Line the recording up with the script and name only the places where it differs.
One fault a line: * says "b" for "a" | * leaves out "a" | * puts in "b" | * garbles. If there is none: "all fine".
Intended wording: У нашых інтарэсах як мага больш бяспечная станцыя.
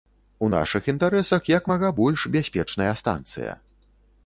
all fine